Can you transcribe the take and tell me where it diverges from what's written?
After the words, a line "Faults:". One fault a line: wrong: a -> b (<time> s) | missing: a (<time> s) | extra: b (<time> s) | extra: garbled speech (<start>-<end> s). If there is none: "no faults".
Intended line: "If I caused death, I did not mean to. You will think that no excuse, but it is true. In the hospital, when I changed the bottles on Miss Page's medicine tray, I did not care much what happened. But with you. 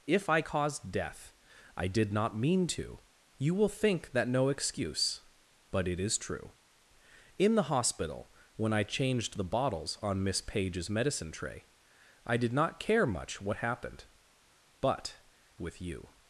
"If I caused death, I did not mean to. You will think that no excuse, but it is true. In the hospital, when I changed the bottles on Miss Page's medicine tray, I did not care much what happened. But with you.
Faults:
no faults